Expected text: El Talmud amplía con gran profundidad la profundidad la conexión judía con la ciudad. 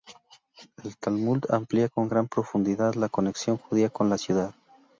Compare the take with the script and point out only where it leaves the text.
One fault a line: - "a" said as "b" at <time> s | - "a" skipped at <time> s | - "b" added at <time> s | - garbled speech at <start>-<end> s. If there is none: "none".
- "profundidad la" skipped at 3.1 s